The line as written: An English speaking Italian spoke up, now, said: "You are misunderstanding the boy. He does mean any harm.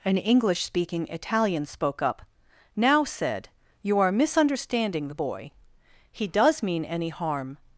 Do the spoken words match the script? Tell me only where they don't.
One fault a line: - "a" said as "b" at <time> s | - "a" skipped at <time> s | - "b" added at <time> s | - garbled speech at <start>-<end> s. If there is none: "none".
none